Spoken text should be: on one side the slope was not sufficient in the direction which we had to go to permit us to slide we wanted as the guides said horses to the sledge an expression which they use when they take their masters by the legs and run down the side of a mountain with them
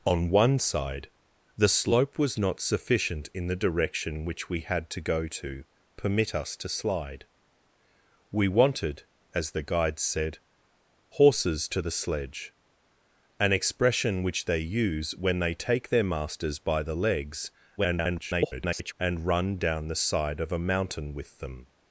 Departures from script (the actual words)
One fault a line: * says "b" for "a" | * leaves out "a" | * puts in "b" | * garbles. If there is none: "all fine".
* garbles